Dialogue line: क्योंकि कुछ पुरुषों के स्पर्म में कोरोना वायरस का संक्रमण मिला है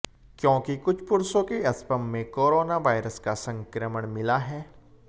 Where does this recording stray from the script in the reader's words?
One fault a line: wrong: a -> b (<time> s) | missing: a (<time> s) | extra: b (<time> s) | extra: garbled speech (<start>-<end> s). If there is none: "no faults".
no faults